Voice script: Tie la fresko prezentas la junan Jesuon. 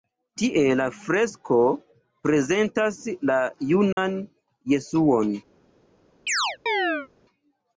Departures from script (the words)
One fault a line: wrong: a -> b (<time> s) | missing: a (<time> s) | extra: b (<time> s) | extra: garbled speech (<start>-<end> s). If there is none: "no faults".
no faults